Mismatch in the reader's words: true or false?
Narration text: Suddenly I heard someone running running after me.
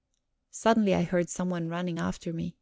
true